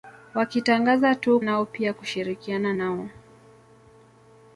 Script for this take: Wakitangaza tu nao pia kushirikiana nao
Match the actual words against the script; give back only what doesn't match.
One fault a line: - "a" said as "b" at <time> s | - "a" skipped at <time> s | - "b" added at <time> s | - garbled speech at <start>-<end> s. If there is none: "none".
none